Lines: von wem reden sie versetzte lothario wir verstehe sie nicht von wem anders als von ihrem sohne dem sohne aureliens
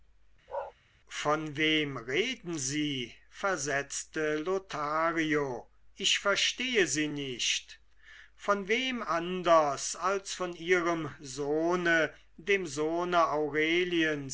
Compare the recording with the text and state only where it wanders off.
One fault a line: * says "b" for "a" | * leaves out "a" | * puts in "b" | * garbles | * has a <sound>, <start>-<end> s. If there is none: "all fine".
* has a bark, 0.5-0.7 s
* says "ich" for "wir"